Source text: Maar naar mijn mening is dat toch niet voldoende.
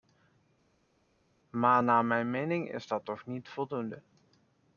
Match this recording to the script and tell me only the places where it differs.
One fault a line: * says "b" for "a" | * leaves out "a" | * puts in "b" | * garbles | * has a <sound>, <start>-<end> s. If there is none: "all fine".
all fine